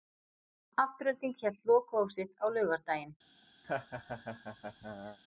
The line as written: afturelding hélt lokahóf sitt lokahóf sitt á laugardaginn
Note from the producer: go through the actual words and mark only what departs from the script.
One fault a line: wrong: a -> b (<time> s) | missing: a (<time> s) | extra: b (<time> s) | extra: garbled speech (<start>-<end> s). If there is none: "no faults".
missing: lokahóf sitt (2.3 s)